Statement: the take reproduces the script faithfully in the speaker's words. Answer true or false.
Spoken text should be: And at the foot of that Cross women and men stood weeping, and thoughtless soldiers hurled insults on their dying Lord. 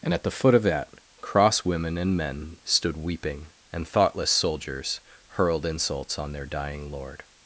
true